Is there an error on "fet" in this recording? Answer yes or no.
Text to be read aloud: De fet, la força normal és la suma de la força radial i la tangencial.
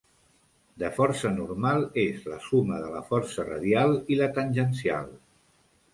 yes